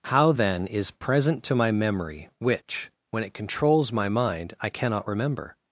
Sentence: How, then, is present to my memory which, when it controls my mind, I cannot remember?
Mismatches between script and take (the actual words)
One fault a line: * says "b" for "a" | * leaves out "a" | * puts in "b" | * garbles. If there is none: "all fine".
all fine